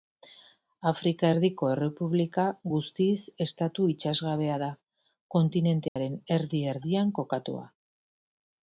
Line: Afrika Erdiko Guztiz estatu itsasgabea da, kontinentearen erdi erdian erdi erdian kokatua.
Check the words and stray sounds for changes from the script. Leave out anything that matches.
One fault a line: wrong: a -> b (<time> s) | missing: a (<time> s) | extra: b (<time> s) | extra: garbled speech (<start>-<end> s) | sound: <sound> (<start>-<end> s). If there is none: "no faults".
extra: Errepublika (1.7 s)
sound: dropout (5.9-6.0 s)
missing: erdi erdian (7.1 s)